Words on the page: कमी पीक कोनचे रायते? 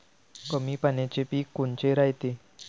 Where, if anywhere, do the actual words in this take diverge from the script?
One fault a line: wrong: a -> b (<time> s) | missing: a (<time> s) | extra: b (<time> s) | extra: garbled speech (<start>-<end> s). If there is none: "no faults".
extra: पाण्याचे (0.8 s)